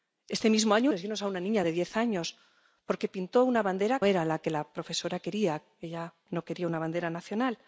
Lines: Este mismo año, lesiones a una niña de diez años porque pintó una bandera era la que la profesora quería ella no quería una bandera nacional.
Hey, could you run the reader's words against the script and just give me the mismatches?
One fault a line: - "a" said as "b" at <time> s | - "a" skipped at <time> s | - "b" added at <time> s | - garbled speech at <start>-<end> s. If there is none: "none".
none